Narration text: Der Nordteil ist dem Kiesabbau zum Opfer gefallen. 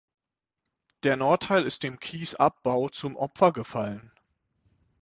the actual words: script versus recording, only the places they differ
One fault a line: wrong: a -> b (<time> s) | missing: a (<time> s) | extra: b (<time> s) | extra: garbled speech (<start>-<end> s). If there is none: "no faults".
no faults